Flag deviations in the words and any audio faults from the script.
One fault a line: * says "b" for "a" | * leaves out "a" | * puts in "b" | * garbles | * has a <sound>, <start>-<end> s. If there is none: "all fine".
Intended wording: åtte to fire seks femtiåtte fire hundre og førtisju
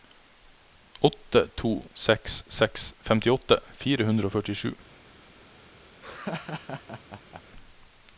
* says "seks" for "fire"
* has a laugh, 6.0-7.4 s